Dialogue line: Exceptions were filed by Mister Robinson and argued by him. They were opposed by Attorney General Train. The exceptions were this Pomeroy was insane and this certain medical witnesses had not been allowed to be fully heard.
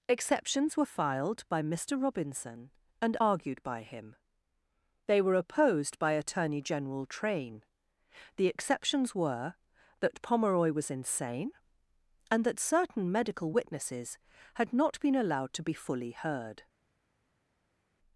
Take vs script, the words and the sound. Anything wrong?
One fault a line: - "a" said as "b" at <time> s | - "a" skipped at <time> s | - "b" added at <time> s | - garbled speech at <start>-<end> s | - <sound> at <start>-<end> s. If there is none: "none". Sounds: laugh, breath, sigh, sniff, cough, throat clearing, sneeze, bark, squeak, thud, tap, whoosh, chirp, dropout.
- "this" said as "that" at 10.0 s
- "this" said as "that" at 12.4 s